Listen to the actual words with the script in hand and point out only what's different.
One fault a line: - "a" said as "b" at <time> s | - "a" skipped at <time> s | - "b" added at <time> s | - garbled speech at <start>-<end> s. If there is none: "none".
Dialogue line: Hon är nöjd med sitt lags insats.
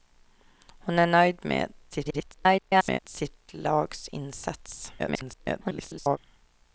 - garbled speech at 1.9-3.0 s
- garbled speech at 5.0-6.2 s